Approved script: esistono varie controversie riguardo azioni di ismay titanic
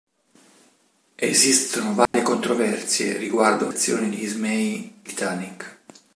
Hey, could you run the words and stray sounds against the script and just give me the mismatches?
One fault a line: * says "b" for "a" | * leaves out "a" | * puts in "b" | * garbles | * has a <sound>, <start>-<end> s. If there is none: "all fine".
* has a dropout, 2.1-2.1 s